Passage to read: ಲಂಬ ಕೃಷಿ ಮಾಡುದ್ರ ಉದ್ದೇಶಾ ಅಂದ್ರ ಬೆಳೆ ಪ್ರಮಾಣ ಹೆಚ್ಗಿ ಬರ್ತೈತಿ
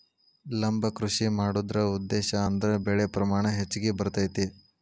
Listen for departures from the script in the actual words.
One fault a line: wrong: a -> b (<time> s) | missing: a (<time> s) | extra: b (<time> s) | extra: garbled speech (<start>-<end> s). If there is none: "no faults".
no faults